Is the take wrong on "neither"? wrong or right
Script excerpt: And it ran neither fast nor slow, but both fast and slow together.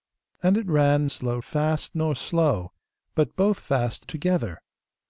wrong